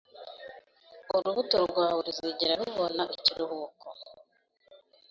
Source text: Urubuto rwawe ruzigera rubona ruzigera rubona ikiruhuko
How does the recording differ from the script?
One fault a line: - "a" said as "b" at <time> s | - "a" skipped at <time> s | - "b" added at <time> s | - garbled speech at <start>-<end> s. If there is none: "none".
- "ruzigera rubona" skipped at 3.0 s